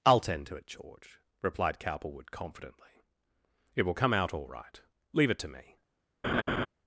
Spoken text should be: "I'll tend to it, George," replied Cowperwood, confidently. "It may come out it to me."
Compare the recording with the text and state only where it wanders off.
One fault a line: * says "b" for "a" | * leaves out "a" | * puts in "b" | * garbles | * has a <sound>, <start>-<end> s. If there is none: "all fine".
* says "will" for "may"
* puts in "all right Leave"
* has a laugh, 6.2-6.7 s